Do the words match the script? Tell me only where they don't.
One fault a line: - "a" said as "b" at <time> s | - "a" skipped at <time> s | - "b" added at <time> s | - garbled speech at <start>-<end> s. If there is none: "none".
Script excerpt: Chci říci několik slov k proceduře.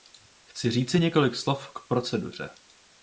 none